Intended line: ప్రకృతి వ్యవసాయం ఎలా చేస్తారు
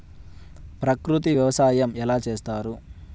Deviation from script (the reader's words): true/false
false